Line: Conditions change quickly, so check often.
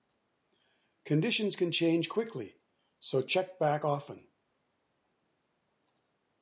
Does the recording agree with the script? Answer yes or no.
no